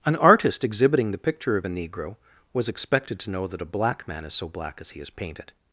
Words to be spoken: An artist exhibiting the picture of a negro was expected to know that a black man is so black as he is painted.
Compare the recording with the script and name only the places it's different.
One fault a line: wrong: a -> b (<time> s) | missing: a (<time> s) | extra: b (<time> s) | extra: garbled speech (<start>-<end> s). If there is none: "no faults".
no faults